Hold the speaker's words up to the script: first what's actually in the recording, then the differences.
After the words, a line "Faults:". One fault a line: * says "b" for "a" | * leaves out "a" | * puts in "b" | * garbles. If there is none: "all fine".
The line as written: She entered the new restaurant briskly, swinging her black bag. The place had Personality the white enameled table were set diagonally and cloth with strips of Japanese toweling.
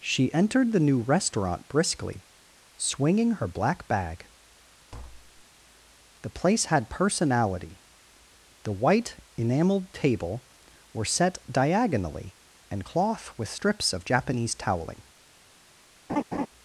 She entered the new restaurant briskly, swinging her black bag. The place had Personality the white enameled table were set diagonally and cloth with strips of Japanese toweling.
Faults:
all fine